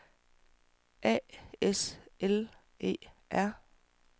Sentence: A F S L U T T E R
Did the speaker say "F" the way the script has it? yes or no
no